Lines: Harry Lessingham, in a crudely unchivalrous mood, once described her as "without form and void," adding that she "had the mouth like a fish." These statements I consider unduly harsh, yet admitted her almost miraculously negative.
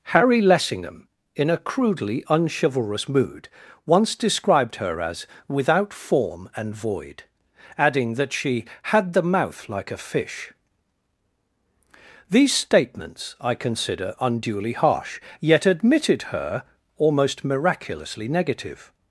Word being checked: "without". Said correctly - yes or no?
yes